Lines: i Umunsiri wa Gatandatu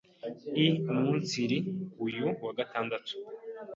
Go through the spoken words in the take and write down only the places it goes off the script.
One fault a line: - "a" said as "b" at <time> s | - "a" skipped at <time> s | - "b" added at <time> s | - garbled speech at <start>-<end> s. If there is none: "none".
- "uyu" added at 2.1 s